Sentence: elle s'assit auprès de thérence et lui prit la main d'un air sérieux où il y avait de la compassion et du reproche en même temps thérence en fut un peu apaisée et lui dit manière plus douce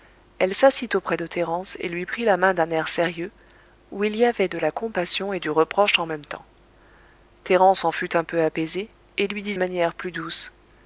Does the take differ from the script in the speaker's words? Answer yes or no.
no